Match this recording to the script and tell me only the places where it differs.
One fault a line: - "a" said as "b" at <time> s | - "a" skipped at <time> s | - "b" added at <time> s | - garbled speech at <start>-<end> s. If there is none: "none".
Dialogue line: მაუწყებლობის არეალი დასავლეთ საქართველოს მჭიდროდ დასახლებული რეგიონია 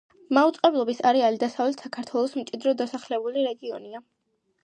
none